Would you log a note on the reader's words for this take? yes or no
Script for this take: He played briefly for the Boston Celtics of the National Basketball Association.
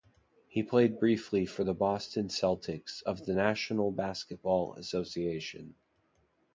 no